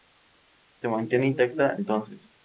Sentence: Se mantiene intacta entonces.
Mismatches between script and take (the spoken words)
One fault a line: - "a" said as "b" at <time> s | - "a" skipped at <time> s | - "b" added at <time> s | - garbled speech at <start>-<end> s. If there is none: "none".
none